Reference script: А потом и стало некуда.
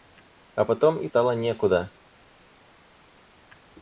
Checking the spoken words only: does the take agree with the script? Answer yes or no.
yes